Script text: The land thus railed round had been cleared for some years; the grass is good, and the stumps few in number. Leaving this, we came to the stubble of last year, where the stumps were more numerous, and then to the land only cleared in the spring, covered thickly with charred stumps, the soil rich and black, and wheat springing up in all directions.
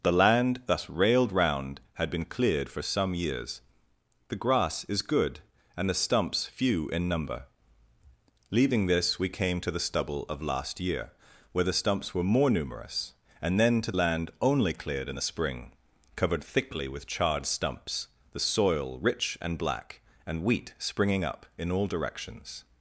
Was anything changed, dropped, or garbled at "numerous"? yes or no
no